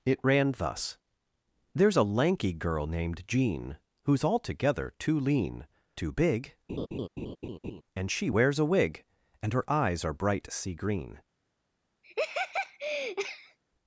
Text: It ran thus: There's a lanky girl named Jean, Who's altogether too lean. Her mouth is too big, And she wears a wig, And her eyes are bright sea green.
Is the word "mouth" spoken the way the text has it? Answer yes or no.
no